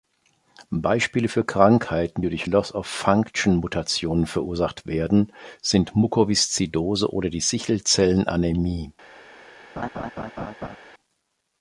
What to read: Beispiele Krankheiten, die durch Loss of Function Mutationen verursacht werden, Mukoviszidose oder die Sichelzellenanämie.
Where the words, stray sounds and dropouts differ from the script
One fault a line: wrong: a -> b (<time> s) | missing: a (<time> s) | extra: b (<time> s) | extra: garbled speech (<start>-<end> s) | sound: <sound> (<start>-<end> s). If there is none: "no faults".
extra: für (1.3 s)
extra: sind (5.6 s)
sound: laugh (9.8-10.8 s)